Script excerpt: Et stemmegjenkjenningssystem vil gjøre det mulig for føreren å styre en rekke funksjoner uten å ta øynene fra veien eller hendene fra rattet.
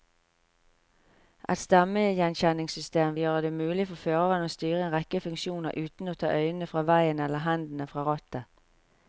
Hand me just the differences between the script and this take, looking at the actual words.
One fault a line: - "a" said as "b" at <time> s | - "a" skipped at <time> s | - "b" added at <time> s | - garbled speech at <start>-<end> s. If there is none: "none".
- "vil" skipped at 3.2 s